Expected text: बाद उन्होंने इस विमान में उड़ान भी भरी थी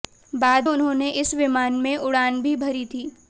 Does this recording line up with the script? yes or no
yes